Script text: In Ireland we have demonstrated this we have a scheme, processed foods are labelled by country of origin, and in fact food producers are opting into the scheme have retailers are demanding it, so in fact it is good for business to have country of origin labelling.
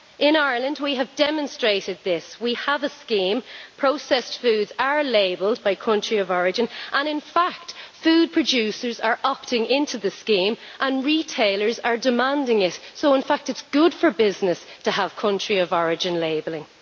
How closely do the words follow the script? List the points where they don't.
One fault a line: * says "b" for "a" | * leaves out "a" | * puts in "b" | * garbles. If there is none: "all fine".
* says "and" for "have"